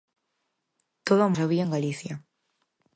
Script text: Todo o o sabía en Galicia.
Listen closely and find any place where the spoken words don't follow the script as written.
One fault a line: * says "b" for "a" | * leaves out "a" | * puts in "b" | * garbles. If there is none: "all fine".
all fine